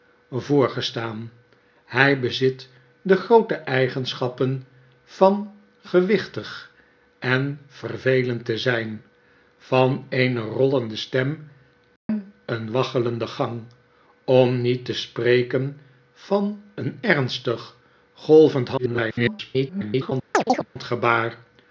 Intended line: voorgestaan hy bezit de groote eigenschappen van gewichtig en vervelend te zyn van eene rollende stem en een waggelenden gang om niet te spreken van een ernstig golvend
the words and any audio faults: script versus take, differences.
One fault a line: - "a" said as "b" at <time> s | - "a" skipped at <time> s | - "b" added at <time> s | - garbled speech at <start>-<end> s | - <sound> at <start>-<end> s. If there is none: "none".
- dropout at 12.0-12.1 s
- garbled speech at 18.8-20.1 s
- chirp at 20.3-20.7 s